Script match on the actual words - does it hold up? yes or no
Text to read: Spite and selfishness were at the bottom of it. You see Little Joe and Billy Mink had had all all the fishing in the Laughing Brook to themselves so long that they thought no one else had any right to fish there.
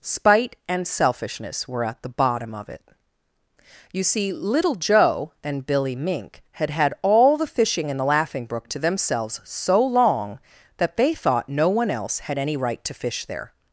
no